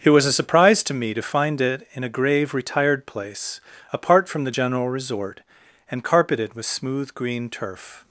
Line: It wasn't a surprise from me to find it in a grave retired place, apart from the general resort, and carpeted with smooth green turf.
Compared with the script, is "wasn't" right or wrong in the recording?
wrong